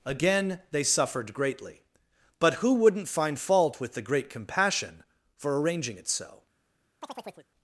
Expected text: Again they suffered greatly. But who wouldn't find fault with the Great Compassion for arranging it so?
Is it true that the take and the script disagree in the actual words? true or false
false